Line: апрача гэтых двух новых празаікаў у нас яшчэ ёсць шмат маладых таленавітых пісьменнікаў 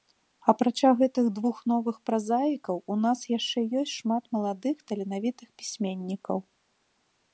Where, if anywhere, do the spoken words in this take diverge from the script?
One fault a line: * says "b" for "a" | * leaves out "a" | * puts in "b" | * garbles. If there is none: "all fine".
all fine